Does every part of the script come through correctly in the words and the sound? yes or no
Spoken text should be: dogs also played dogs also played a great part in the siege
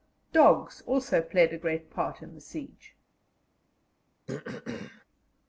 no